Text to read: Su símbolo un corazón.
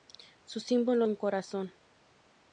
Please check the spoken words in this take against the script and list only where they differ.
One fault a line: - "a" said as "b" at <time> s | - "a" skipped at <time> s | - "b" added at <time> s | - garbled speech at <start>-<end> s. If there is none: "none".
none